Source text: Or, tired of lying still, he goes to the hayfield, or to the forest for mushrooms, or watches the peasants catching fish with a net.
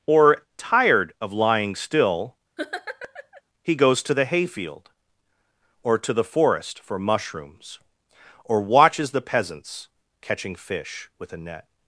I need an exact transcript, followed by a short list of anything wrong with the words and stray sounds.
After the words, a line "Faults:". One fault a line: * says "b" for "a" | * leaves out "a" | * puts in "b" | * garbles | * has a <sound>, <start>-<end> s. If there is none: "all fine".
Or, tired of lying still, he goes to the hayfield, or to the forest for mushrooms, or watches the peasants catching fish with a net.
Faults:
* has a laugh, 2.6-3.4 s